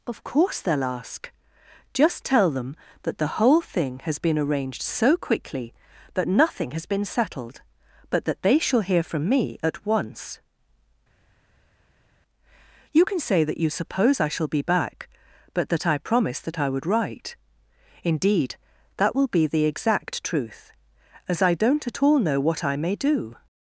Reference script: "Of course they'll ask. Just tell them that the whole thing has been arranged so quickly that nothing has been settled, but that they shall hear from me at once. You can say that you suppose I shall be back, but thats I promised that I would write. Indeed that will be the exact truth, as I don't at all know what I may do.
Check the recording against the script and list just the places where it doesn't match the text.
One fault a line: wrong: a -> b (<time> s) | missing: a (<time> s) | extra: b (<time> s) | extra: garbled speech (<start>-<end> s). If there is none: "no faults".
wrong: thats -> that (15.7 s)